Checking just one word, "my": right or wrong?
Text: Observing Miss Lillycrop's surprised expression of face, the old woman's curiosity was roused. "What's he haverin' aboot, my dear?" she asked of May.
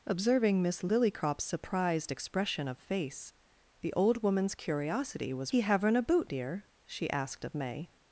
wrong